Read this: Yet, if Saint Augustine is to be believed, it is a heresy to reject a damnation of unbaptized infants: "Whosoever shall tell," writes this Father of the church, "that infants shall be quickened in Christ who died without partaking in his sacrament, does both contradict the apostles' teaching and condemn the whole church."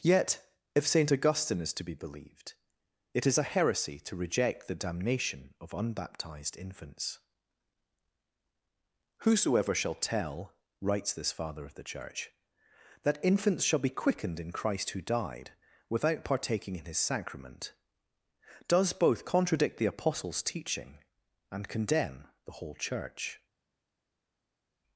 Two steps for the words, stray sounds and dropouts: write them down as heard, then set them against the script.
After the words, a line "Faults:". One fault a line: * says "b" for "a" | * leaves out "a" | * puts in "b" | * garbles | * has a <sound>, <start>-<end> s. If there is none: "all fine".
Yet, if Saint Augustine is to be believed, it is a heresy to reject the damnation of unbaptized infants: "Whosoever shall tell," writes this Father of the church, "that infants shall be quickened in Christ who died without partaking in his sacrament, does both contradict the apostles' teaching and condemn the whole church."
Faults:
* says "the" for "a"